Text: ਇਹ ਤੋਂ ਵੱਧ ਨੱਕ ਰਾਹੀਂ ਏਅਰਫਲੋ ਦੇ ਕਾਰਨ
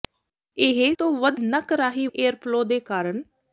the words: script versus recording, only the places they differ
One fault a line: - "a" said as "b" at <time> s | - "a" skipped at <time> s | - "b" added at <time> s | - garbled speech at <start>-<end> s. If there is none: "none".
none